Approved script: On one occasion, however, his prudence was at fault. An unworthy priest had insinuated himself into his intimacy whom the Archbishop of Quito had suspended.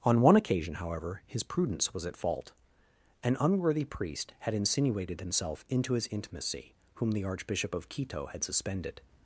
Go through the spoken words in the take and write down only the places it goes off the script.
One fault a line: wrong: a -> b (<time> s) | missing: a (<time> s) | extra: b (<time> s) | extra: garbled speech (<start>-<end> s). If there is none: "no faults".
no faults